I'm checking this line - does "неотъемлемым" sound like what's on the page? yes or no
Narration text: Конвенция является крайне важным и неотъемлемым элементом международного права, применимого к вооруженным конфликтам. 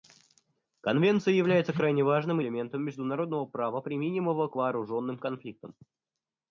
no